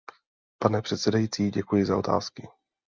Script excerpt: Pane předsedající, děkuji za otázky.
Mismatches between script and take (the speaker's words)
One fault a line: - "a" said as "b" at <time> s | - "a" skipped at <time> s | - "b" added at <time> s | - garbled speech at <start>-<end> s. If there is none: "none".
none